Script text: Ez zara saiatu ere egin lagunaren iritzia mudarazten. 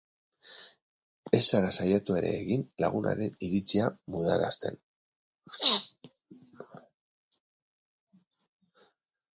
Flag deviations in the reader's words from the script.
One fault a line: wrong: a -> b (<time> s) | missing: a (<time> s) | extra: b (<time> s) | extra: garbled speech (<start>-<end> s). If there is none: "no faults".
no faults